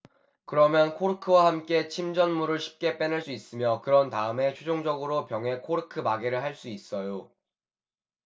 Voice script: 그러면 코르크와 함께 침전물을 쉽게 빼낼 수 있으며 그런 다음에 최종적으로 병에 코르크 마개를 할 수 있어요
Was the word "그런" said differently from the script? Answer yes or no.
no